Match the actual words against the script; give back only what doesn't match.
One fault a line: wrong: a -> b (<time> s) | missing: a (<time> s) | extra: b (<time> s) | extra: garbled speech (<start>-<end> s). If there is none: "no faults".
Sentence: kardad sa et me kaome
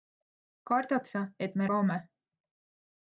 no faults